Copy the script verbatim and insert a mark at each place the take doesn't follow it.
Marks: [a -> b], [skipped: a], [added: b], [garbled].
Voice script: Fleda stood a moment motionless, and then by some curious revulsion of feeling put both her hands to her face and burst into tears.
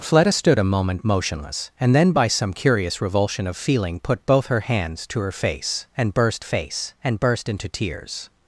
Fleda stood a moment motionless, and then by some curious revulsion of feeling put both her hands to her face and burst [added: face and burst] into tears.